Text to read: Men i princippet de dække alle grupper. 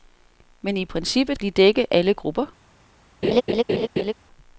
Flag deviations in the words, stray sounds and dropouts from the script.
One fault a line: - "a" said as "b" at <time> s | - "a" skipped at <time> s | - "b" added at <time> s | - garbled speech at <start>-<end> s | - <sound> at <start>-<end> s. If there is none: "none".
- laugh at 3.2-4.1 s